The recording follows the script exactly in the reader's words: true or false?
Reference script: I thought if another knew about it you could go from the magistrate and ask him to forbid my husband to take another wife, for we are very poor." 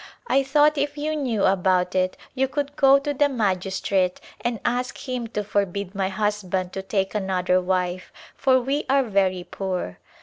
false